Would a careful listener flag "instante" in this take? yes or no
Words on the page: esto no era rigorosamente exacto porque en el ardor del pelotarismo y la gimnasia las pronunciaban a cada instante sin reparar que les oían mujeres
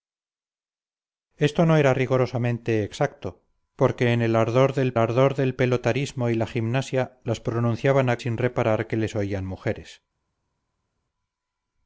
yes